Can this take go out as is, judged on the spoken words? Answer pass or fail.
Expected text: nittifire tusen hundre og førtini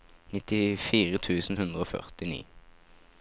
pass